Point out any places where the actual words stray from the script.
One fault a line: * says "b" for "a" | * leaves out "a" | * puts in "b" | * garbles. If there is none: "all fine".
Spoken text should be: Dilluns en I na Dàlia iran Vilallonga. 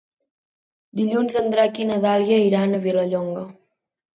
* puts in "Drac"
* puts in "a"